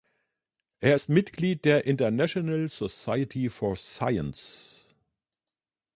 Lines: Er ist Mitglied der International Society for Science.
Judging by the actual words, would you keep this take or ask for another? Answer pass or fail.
pass